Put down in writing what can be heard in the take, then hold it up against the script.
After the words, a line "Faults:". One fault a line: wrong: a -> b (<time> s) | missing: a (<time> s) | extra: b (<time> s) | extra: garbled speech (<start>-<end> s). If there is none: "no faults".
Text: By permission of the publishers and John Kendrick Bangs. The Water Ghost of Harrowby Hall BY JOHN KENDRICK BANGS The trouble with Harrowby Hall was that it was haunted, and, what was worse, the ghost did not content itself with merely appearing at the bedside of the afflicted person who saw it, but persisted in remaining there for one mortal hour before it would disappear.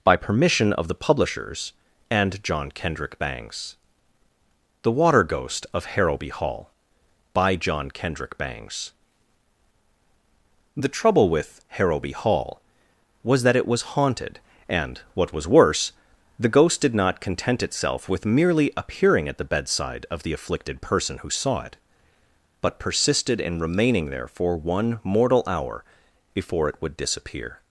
By permission of the publishers and John Kendrick Bangs. The Water Ghost of Harrowby Hall BY JOHN KENDRICK BANGS The trouble with Harrowby Hall was that it was haunted, and, what was worse, the ghost did not content itself with merely appearing at the bedside of the afflicted person who saw it, but persisted in remaining there for one mortal hour before it would disappear.
Faults:
no faults